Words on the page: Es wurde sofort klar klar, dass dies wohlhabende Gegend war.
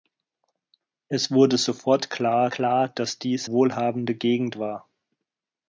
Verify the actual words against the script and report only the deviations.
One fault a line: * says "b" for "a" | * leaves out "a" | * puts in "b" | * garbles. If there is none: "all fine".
all fine